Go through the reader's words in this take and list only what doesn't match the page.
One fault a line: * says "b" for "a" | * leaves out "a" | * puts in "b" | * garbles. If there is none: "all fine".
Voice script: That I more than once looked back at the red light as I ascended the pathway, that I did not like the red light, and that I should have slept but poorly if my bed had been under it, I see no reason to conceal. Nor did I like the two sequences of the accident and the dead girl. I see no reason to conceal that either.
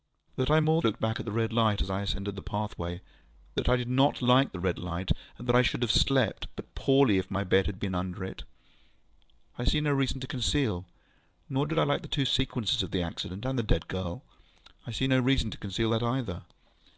* leaves out "than once"